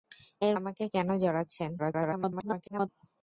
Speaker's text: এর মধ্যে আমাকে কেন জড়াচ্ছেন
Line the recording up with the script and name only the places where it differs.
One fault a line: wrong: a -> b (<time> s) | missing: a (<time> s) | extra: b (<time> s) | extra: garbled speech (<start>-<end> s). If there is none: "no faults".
missing: মধ্যে (0.6 s)
extra: garbled speech (1.8-2.9 s)